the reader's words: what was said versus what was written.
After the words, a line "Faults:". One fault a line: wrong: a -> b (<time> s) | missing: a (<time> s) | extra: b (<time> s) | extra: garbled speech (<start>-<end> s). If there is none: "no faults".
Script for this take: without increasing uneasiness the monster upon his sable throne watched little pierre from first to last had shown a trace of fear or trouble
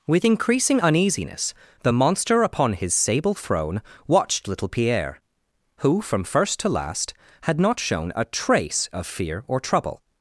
with increasing uneasiness the monster upon his sable throne watched little pierre who from first to last had not shown a trace of fear or trouble
Faults:
wrong: without -> with (0.1 s)
extra: who (5.8 s)
extra: not (7.6 s)